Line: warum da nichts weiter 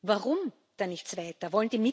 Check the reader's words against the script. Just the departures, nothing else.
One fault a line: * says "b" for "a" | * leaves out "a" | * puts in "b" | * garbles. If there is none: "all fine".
all fine